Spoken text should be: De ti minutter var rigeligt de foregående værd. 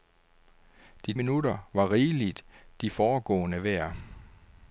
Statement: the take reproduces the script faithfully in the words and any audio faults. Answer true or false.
false